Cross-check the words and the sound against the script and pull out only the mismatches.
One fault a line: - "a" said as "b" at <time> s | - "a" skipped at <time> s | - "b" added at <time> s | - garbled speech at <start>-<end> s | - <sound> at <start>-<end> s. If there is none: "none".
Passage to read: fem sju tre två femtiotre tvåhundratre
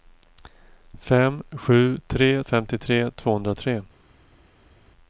- "två" skipped at 2.4 s